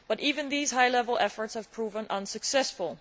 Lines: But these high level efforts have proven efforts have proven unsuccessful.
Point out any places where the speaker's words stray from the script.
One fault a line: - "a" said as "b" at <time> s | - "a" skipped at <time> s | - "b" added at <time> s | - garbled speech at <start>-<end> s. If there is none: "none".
- "even" added at 0.2 s
- "efforts have proven" skipped at 2.1 s